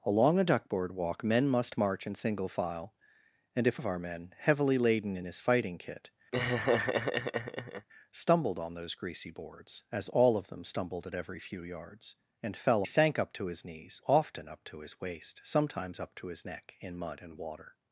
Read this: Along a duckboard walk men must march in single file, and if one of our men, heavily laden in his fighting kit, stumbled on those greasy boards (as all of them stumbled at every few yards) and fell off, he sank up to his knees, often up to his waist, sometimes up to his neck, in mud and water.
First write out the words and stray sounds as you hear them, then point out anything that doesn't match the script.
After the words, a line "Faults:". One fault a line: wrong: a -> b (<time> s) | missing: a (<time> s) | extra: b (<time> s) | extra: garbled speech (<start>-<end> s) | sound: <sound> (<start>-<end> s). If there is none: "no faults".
Along a duckboard walk men must march in single file, and if of our men, heavily laden in his fighting kit, stumbled on those greasy boards (as all of them stumbled at every few yards) and fell sank up to his knees, often up to his waist, sometimes up to his neck, in mud and water.
Faults:
missing: one (3.8 s)
sound: laugh (6.3-7.9 s)
missing: off he (12.8 s)